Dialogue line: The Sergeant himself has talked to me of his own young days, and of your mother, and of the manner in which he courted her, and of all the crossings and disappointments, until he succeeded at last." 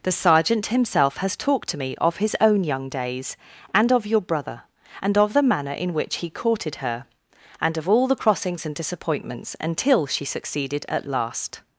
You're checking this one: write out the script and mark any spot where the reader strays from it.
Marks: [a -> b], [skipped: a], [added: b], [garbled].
The Sergeant himself has talked to me of his own young days, and of your [mother, -> brother] and of the manner in which he courted her, and of all the crossings and disappointments, until [he -> she] succeeded at last."